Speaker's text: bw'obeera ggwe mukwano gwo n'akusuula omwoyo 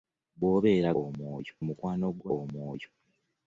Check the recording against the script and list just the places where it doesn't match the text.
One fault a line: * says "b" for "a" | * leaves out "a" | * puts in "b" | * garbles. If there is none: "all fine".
* says "omwoyo" for "ggwe"
* leaves out "n'akusuula"